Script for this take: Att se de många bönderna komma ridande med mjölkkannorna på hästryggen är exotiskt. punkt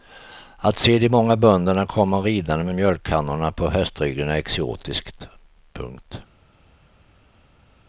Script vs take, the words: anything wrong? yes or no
no